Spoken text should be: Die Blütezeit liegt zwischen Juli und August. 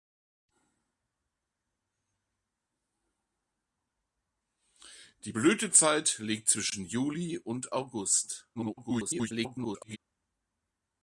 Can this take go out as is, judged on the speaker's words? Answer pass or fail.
fail